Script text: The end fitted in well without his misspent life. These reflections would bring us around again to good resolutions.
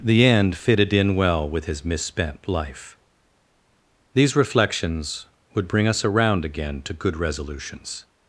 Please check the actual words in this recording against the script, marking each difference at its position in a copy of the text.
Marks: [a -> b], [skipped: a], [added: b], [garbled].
The end fitted in well [without -> with] his misspent life. These reflections would bring us around again to good resolutions.